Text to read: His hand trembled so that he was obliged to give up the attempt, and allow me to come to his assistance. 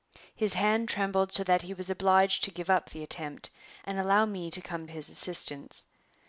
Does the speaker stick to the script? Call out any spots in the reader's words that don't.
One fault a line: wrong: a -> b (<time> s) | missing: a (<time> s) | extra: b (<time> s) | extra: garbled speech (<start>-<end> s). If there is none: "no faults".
missing: to (4.9 s)